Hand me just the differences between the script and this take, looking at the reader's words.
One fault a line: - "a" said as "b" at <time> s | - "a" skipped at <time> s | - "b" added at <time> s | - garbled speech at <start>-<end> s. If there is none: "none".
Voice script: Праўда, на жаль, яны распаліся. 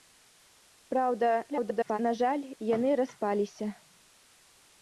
- garbled speech at 1.5-2.0 s